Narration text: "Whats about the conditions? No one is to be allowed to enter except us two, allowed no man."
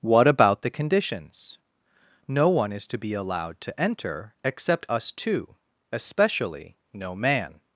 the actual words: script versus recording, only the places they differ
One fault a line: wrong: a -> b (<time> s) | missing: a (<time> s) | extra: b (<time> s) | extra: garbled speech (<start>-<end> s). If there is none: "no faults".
wrong: Whats -> What (0.0 s)
wrong: allowed -> especially (5.9 s)